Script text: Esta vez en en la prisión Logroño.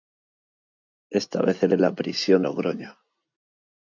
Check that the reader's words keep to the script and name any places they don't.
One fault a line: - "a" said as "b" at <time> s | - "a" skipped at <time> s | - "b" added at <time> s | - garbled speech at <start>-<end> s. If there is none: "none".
none